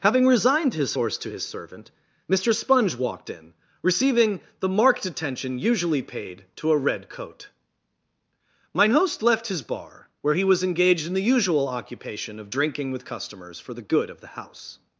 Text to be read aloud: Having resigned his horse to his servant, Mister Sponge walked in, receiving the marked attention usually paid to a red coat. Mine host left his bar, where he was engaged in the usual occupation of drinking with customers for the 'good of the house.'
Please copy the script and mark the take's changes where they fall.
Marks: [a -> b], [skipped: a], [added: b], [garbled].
Having resigned his horse to his servant, Mister Sponge walked in, receiving the marked attention usually paid to a red coat. Mine host left his bar, where he was engaged in the usual occupation of drinking with customers for the 'good of the house.'